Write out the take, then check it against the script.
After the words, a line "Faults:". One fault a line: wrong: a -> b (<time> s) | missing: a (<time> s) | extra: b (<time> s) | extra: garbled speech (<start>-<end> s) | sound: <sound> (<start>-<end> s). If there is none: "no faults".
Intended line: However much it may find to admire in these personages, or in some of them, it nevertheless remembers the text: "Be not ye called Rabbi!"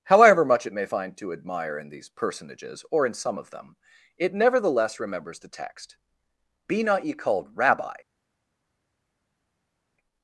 However much it may find to admire in these personages, or in some of them, it nevertheless remembers the text: "Be not ye called Rabbi!"
Faults:
no faults